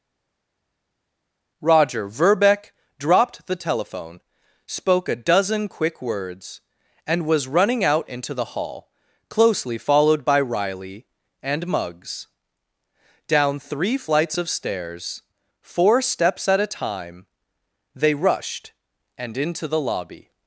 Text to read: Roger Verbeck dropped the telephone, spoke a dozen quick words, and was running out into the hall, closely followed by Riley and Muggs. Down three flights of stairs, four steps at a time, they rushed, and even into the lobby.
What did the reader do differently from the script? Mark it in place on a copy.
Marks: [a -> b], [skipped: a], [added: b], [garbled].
Roger Verbeck dropped the telephone, spoke a dozen quick words, and was running out into the hall, closely followed by Riley and Muggs. Down three flights of stairs, four steps at a time, they rushed, and [skipped: even] into the lobby.